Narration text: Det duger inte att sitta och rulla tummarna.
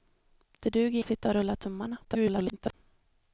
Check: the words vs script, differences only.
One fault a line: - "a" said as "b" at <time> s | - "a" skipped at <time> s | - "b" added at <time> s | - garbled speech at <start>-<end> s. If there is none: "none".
- "inte" skipped at 1.0 s
- garbled speech at 2.0-2.7 s